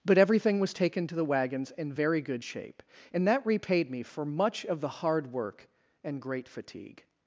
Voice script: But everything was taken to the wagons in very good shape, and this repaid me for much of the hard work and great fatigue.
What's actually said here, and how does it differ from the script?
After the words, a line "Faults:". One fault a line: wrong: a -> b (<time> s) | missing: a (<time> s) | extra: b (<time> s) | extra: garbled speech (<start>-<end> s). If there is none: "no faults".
But everything was taken to the wagons in very good shape, and that repaid me for much of the hard work and great fatigue.
Faults:
wrong: this -> that (3.3 s)